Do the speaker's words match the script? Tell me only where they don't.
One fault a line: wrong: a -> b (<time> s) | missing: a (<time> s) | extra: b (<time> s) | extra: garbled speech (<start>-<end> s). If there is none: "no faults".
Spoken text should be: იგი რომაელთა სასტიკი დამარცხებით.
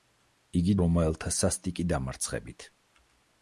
no faults